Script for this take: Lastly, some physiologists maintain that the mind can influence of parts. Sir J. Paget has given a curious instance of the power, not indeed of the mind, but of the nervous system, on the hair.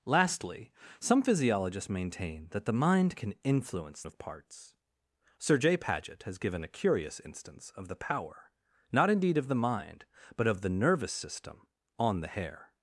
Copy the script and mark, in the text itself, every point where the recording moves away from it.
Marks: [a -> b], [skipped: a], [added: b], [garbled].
Lastly, some physiologists maintain that the mind can influence of parts. Sir J. Paget has given a curious instance of the power, not indeed of the mind, but of the nervous system, on the hair.